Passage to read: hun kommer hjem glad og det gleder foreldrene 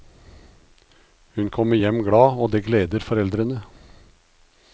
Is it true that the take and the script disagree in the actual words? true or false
false